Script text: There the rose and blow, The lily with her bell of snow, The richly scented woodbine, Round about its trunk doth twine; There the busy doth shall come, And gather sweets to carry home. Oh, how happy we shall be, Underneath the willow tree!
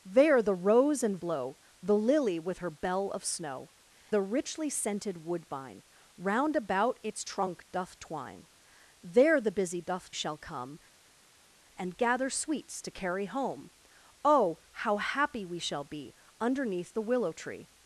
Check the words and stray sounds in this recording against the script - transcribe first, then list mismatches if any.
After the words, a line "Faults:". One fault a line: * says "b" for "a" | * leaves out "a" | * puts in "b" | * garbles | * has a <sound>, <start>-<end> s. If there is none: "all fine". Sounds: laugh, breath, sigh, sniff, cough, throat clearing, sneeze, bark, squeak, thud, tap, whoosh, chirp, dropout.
There the rose and blow, The lily with her bell of snow, The richly scented woodbine, Round about its trunk doth twine; There the busy doth shall come, And gather sweets to carry home. Oh, how happy we shall be, Underneath the willow tree!
Faults:
all fine